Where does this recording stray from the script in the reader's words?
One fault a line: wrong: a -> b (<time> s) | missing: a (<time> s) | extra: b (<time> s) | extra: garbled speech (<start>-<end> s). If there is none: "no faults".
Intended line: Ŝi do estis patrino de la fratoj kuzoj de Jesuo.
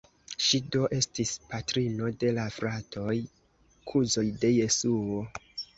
no faults